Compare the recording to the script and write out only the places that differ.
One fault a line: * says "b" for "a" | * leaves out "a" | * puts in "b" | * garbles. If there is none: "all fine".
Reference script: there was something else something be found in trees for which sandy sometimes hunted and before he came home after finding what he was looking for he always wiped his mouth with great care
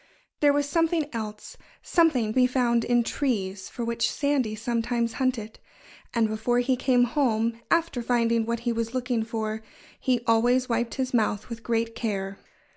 all fine